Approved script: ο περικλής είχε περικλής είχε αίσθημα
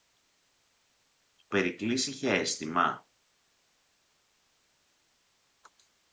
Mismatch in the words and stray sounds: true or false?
true